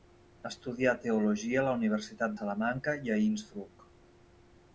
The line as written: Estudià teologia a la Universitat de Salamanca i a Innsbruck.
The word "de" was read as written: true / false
false